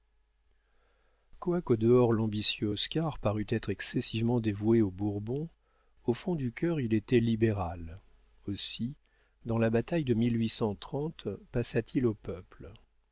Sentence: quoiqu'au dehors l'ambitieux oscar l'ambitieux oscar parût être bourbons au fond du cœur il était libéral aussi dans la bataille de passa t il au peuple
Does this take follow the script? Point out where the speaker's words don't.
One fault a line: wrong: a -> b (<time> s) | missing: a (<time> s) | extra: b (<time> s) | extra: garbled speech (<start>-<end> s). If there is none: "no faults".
wrong: l'ambitieux oscar parût être -> parût être excessivement dévoué aux (3.2 s)